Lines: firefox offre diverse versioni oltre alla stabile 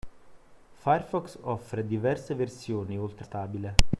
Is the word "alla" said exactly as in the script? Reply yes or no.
no